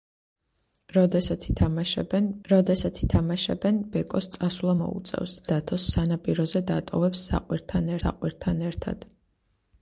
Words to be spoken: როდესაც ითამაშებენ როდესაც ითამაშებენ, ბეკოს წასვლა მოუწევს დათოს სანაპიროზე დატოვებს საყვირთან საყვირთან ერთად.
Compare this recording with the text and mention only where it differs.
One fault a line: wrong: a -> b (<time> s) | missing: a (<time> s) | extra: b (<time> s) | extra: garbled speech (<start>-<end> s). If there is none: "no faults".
no faults